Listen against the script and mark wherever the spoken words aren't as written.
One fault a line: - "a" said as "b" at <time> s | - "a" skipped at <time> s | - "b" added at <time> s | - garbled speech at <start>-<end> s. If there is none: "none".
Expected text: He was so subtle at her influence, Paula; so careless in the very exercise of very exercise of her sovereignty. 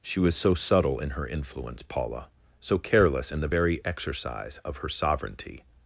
- "He" said as "She" at 0.0 s
- "at" said as "in" at 1.0 s
- "very exercise of" skipped at 4.8 s